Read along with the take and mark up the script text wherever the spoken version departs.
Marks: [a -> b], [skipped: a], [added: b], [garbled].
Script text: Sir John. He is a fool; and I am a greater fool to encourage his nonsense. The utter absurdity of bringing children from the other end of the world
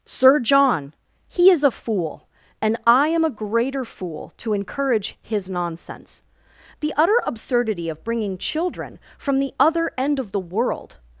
Sir John. He is a fool; and I am a greater fool to encourage his nonsense. The utter absurdity of bringing children from the other end of the world